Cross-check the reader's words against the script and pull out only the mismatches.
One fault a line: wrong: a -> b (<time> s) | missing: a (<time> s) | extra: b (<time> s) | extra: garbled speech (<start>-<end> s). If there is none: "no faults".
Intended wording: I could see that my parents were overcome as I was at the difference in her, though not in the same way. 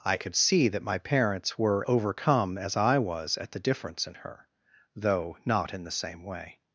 no faults